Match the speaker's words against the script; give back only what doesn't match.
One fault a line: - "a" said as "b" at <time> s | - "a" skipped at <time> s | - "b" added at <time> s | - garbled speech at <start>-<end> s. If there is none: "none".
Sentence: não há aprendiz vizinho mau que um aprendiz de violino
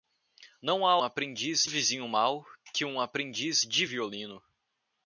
none